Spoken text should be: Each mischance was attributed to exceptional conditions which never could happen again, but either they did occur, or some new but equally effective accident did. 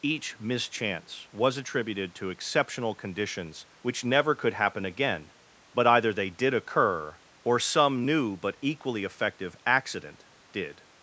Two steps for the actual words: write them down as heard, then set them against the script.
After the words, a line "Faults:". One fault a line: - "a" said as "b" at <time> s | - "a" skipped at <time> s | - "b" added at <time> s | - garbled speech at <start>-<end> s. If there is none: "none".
Each mischance was attributed to exceptional conditions which never could happen again, but either they did occur, or some new but equally effective accident did.
Faults:
none